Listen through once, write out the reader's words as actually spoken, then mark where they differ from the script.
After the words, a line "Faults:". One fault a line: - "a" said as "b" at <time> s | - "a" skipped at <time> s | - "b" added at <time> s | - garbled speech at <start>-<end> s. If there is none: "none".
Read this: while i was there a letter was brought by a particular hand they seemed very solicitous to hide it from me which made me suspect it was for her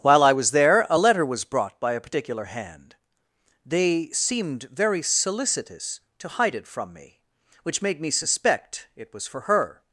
while i was there a letter was brought by a particular hand they seemed very solicitous to hide it from me which made me suspect it was for her
Faults:
none